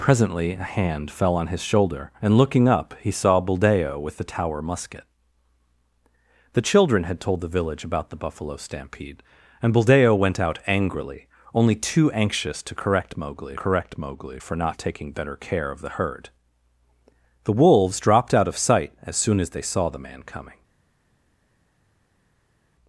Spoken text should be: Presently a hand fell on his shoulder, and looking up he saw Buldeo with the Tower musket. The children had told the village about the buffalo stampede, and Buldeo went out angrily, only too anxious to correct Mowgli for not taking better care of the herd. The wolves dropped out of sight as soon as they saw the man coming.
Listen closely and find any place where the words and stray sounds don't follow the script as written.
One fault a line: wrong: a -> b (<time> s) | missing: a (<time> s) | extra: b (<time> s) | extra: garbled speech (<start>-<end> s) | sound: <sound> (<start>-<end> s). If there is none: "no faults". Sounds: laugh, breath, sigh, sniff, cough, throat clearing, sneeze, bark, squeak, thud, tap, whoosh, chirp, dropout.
extra: correct Mowgli (13.5 s)